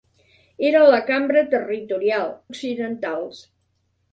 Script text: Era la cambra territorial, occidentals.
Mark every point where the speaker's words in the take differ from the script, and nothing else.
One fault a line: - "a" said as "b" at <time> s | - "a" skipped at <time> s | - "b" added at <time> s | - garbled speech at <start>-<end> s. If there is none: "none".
none